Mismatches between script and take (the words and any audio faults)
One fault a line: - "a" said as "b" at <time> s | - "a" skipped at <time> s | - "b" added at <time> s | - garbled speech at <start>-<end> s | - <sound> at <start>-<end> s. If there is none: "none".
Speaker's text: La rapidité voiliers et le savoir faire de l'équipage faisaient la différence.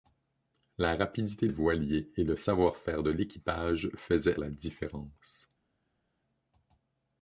none